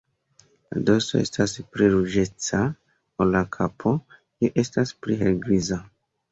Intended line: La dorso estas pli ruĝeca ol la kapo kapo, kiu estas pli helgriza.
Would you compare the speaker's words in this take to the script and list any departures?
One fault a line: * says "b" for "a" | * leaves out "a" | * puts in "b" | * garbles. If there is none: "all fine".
* leaves out "kapo"